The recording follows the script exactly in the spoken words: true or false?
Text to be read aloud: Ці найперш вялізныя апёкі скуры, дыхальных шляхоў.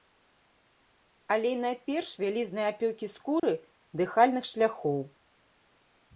false